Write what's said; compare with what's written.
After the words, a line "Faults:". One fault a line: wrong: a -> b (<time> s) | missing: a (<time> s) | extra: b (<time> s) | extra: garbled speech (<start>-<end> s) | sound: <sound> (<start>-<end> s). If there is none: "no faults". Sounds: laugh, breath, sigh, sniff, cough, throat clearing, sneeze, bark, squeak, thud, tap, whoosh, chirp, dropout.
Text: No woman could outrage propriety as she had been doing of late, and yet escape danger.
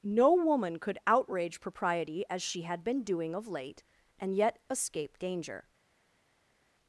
No woman could outrage propriety as she had been doing of late, and yet escape danger.
Faults:
no faults